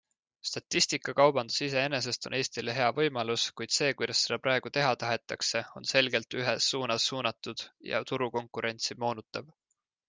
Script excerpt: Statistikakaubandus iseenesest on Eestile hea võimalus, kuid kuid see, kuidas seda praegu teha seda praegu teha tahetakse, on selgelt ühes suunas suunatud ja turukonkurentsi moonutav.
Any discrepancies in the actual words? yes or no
yes